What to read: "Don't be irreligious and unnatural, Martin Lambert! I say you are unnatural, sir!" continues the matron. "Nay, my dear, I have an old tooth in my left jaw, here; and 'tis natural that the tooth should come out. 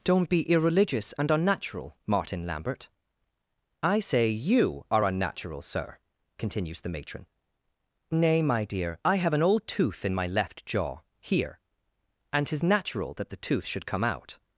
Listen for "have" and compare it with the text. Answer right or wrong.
right